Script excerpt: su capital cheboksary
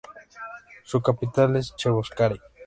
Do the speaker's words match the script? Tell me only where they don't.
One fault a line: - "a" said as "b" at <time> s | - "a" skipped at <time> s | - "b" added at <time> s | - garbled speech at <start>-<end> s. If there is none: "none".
- "es" added at 1.6 s